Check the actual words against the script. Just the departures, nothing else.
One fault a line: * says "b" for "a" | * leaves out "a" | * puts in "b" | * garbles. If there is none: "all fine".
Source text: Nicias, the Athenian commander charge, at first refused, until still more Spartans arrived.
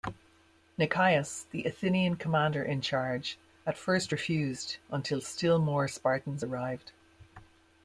* puts in "in"